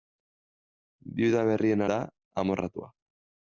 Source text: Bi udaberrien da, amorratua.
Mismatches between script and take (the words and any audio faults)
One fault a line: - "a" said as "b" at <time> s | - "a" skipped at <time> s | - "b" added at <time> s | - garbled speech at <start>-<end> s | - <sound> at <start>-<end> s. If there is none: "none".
none